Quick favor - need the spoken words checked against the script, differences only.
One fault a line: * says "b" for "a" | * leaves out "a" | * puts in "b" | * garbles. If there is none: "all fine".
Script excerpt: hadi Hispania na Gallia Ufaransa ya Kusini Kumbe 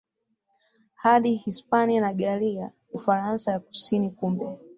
all fine